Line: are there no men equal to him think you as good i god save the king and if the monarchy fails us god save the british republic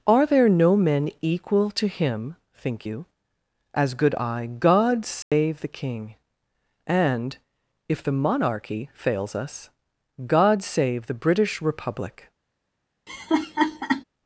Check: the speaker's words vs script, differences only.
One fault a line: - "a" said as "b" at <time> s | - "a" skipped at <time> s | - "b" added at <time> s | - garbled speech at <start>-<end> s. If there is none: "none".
none